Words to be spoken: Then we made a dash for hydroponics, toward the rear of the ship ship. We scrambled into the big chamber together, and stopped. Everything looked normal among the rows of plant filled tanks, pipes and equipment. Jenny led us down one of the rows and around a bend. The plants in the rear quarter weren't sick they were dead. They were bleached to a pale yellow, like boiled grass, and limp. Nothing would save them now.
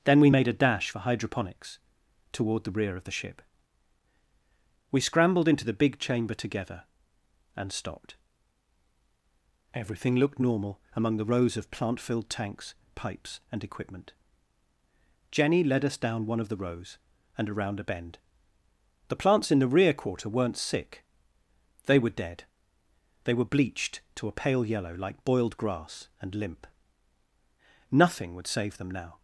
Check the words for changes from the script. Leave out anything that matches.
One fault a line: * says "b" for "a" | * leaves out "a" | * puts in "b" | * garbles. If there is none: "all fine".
* leaves out "ship"